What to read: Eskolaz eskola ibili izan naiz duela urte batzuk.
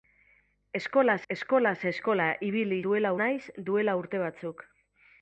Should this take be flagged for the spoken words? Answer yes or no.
yes